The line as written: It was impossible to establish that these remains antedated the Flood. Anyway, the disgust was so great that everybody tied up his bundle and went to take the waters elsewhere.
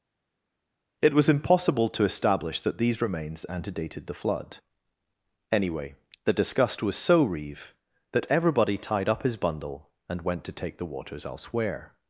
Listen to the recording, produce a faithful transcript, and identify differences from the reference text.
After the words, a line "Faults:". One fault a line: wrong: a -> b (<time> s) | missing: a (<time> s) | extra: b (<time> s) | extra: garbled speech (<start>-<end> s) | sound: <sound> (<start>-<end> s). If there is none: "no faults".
It was impossible to establish that these remains antedated the Flood. Anyway, the disgust was so reeve that everybody tied up his bundle and went to take the waters elsewhere.
Faults:
wrong: great -> reeve (7.2 s)